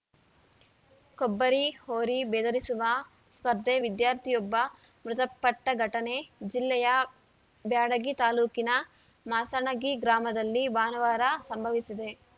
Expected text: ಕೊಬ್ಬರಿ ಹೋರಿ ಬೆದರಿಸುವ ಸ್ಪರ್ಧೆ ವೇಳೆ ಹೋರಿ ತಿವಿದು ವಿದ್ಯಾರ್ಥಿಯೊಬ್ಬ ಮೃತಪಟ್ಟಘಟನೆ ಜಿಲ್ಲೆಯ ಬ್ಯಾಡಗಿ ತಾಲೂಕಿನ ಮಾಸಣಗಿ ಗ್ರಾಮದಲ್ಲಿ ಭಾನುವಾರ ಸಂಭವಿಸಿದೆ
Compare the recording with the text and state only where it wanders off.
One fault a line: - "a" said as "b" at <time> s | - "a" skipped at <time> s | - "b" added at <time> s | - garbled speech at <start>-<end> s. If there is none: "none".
- "ವೇಳೆ ಹೋರಿ ತಿವಿದು" skipped at 3.8 s